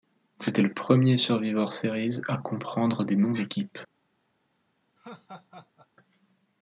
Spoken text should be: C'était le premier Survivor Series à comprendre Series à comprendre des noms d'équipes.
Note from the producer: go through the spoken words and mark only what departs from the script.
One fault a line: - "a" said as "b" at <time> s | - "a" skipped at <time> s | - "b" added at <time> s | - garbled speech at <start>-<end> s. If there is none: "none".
- "Series à comprendre" skipped at 3.0 s